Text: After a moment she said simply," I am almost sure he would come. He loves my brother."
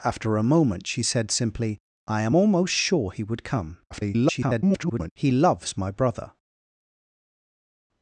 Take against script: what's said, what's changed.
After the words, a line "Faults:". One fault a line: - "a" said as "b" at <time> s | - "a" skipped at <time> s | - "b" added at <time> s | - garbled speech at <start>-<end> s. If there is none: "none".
After a moment she said simply," I am almost sure he would come. [garbled] He loves my brother."
Faults:
- garbled speech at 3.9-5.1 s